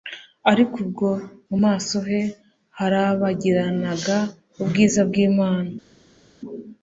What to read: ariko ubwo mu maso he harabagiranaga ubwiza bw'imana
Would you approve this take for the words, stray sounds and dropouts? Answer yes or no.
yes